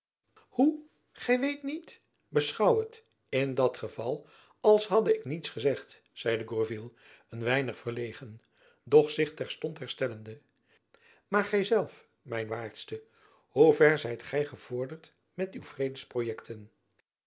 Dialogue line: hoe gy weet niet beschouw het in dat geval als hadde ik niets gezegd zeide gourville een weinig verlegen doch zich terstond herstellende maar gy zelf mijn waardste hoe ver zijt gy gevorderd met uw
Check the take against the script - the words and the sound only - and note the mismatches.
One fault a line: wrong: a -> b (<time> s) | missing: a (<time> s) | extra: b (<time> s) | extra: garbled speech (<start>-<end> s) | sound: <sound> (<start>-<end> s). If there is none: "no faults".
no faults